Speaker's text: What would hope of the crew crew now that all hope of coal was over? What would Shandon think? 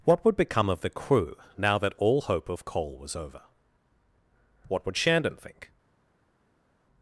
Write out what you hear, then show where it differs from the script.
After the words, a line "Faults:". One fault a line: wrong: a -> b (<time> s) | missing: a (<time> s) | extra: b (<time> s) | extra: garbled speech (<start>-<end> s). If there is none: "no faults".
What would become of the crew now that all hope of coal was over? What would Shandon think?
Faults:
wrong: hope -> become (0.3 s)
missing: crew (1.4 s)